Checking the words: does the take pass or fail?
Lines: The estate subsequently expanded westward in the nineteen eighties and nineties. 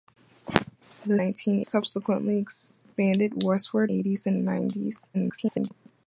fail